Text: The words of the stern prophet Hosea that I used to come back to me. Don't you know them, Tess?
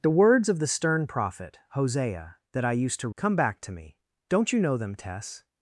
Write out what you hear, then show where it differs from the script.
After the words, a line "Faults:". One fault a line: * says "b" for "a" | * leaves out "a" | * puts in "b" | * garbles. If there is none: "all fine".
The words of the stern prophet Hosea that I used to come back to me. Don't you know them, Tess?
Faults:
all fine